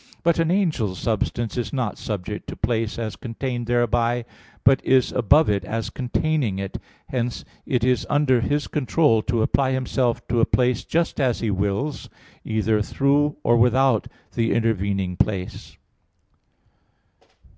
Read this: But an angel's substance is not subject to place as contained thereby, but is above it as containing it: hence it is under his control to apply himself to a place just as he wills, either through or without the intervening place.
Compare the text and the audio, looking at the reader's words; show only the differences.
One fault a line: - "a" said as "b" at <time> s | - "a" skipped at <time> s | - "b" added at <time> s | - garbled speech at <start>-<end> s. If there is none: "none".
none